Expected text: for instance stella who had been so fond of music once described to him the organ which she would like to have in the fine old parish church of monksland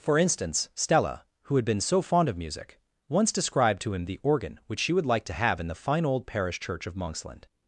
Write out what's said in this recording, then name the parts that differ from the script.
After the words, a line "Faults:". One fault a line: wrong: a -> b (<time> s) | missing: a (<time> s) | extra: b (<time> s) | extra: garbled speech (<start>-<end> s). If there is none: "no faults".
for instance stella who had been so fond of music once described to him the organ which she would like to have in the fine old parish church of monksland
Faults:
no faults